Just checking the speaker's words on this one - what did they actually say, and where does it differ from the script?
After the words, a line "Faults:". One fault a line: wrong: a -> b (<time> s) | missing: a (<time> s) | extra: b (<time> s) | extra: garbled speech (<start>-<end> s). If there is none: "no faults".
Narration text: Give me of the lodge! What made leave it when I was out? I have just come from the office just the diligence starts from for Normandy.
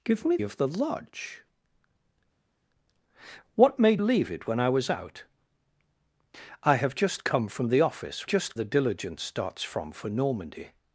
Give me of the lodge! What made leave it when I was out? I have just come from the office just the diligence starts from for Normandy.
Faults:
no faults